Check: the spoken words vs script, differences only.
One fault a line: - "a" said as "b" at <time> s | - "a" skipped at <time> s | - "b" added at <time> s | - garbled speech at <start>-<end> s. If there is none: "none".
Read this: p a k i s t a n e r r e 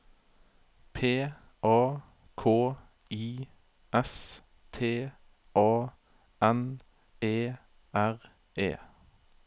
- "r" skipped at 8.2 s